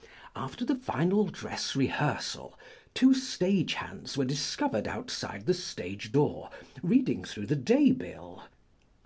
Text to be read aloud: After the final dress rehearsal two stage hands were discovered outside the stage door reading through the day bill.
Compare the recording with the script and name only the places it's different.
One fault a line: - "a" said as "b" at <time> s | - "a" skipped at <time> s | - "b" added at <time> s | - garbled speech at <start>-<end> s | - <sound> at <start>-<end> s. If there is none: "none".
none